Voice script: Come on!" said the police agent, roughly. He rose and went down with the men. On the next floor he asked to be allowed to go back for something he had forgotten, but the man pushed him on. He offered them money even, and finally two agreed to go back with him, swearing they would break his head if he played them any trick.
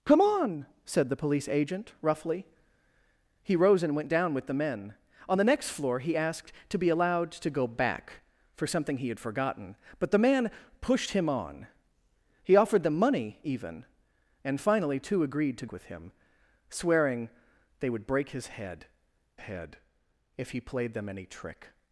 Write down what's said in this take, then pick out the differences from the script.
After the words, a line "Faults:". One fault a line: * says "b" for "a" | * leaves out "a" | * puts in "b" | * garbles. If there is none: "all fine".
Come on!" said the police agent, roughly. He rose and went down with the men. On the next floor he asked to be allowed to go back for something he had forgotten, but the man pushed him on. He offered them money even, and finally two agreed to with him, swearing they would break his head head if he played them any trick.
Faults:
* leaves out "go back"
* puts in "head"